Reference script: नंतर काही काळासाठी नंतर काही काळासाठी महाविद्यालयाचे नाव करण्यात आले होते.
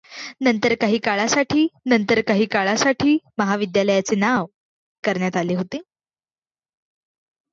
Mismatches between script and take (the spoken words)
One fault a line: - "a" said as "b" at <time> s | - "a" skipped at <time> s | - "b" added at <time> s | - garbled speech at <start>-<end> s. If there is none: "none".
none